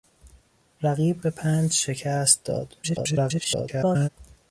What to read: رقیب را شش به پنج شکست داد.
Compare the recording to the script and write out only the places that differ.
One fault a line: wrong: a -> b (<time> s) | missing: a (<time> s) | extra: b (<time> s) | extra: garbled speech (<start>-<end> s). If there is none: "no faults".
missing: را شش (1.2 s)
extra: garbled speech (2.8-4.1 s)